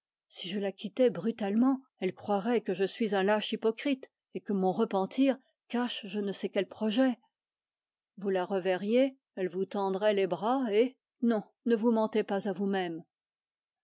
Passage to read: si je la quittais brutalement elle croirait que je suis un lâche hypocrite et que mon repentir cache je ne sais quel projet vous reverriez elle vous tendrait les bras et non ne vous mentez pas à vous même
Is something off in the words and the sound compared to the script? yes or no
yes